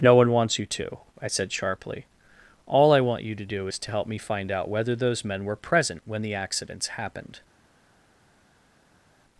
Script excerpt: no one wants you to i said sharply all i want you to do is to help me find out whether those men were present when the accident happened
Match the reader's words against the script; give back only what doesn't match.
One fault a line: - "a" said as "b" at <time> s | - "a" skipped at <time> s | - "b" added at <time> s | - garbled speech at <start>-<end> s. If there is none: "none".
- "accident" said as "accidents" at 6.4 s